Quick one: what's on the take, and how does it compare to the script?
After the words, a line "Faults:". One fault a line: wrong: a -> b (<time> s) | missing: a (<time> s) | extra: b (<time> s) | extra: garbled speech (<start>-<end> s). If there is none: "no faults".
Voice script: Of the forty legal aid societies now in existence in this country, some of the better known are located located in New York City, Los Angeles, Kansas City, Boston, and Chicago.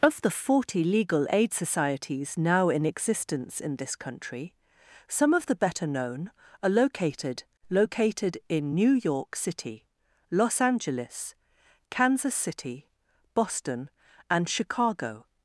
Of the forty legal aid societies now in existence in this country, some of the better known are located located in New York City, Los Angeles, Kansas City, Boston, and Chicago.
Faults:
no faults